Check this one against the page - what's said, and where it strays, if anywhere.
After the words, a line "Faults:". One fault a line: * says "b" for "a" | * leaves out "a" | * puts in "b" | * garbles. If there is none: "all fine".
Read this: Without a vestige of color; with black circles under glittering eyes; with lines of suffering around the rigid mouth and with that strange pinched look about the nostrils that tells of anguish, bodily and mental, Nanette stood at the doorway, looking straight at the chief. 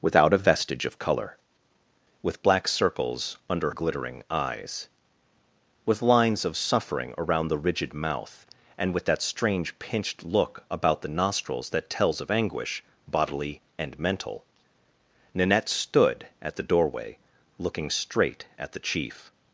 Without a vestige of color; with black circles under glittering eyes; with lines of suffering around the rigid mouth and with that strange pinched look about the nostrils that tells of anguish, bodily and mental, Nanette stood at the doorway, looking straight at the chief.
Faults:
all fine